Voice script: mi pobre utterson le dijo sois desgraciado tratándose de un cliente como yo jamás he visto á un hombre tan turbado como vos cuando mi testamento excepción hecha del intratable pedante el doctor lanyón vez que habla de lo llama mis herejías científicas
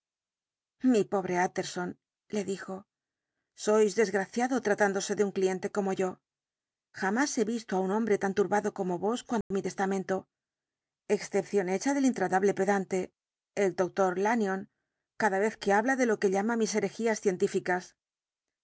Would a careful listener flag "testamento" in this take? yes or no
no